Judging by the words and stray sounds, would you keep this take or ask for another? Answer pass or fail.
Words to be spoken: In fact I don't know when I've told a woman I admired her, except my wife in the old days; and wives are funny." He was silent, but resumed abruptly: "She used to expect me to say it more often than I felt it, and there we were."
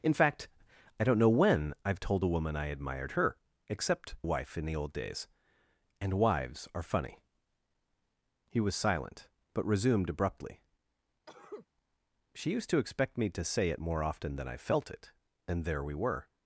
fail